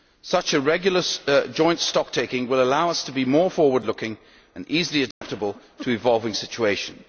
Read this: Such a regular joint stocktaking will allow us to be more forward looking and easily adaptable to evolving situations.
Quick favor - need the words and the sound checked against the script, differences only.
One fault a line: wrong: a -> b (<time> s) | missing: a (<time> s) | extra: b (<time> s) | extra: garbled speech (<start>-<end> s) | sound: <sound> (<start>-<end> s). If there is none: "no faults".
sound: dropout (5.1-5.2 s)